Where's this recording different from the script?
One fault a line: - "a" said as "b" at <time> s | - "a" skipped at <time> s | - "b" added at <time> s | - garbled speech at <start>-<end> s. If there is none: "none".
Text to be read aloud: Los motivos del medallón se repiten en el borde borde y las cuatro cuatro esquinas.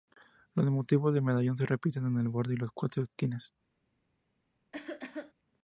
- "borde" skipped at 2.5 s
- "cuatro" skipped at 3.0 s